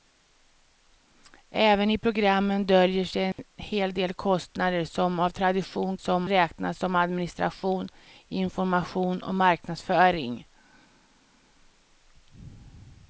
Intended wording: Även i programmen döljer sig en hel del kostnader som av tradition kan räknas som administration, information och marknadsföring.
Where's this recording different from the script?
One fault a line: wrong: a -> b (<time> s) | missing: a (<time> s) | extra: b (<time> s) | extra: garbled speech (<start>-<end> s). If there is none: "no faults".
wrong: kan -> som (6.0 s)